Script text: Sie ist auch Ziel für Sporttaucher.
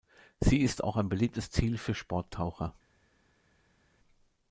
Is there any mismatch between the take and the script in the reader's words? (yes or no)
yes